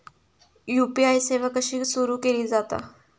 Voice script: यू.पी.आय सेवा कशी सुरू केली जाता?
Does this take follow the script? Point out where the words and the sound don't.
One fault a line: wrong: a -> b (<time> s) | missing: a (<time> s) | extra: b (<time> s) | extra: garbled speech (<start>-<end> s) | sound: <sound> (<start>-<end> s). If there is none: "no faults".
no faults